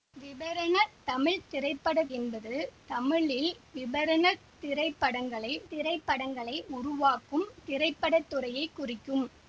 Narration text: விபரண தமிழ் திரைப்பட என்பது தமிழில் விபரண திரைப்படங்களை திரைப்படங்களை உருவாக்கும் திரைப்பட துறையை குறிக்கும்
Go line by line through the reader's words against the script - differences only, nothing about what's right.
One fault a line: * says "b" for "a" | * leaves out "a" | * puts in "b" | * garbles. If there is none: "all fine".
all fine